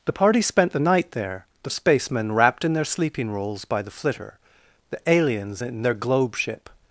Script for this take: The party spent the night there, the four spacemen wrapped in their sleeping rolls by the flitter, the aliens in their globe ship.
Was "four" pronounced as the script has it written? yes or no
no